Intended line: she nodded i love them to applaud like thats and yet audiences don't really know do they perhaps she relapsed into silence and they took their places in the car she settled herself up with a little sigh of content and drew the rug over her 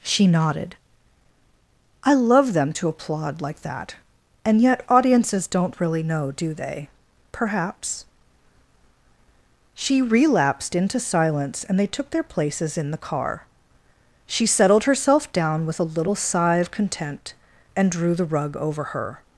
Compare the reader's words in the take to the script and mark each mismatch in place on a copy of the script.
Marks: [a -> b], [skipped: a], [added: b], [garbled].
she nodded i love them to applaud like [thats -> that] and yet audiences don't really know do they perhaps she relapsed into silence and they took their places in the car she settled herself [up -> down] with a little sigh of content and drew the rug over her